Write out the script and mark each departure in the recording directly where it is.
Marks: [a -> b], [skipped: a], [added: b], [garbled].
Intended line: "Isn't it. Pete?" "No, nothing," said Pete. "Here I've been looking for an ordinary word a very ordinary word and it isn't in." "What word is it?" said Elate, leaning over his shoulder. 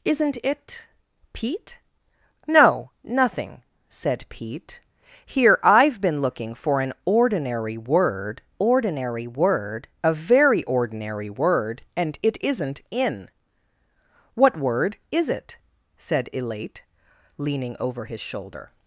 "Isn't it. Pete?" "No, nothing," said Pete. "Here I've been looking for an ordinary word [added: ordinary word] a very ordinary word and it isn't in." "What word is it?" said Elate, leaning over his shoulder.